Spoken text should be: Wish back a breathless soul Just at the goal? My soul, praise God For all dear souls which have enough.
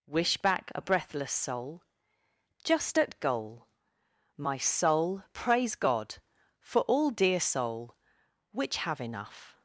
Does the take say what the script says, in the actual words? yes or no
no